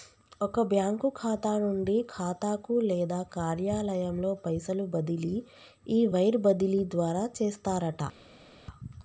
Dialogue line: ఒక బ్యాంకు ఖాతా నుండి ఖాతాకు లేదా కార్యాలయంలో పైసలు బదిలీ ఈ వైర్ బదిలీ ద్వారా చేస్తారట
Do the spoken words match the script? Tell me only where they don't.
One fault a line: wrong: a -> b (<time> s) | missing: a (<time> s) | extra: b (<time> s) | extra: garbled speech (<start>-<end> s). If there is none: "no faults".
no faults